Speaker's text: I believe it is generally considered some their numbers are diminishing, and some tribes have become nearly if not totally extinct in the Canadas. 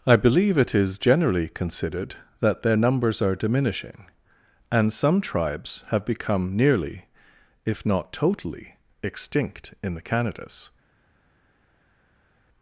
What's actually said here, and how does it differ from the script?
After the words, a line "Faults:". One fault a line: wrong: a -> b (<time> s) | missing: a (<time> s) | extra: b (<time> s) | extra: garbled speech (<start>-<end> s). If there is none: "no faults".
I believe it is generally considered that their numbers are diminishing, and some tribes have become nearly if not totally extinct in the Canadas.
Faults:
wrong: some -> that (2.4 s)